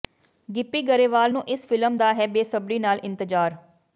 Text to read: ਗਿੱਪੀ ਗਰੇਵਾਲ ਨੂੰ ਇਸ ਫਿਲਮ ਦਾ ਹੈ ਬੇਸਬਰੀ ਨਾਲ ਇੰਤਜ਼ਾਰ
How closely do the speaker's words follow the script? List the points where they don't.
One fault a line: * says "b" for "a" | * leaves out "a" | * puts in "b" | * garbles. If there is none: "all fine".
all fine